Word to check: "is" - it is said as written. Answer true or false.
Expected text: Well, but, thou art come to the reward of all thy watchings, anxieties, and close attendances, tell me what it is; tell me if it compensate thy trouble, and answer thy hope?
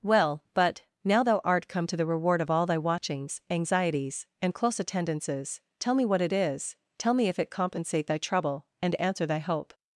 true